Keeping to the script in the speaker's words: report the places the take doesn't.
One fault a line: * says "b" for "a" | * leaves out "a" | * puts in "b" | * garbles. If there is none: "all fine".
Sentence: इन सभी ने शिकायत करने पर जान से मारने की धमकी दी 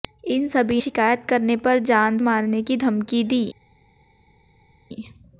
* leaves out "ने"
* leaves out "से"